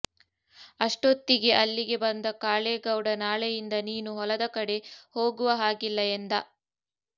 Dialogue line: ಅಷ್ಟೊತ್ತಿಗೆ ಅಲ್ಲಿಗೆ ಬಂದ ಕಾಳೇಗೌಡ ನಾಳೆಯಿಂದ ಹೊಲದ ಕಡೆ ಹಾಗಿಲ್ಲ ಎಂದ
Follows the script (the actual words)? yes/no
no